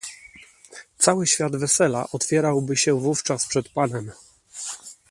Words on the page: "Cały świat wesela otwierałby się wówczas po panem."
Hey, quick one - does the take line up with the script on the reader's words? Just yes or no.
no